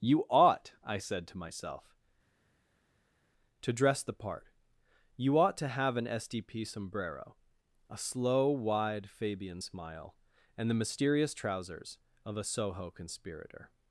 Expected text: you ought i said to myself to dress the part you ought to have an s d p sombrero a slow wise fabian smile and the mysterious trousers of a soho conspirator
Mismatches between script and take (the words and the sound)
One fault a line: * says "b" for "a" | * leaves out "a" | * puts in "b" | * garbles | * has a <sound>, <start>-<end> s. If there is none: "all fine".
* says "wide" for "wise"